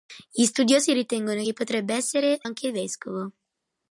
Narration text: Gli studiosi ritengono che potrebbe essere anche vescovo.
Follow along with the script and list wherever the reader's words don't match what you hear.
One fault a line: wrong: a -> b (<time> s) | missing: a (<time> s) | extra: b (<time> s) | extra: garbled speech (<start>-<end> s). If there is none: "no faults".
no faults